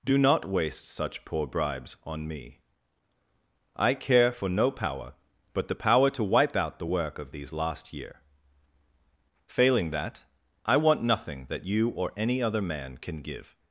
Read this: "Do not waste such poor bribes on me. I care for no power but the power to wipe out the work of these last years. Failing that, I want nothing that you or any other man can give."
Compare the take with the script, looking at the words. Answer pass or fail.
fail